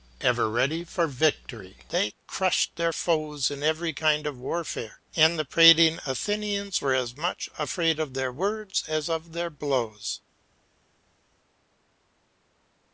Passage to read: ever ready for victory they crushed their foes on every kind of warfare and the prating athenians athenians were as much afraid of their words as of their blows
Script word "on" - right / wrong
wrong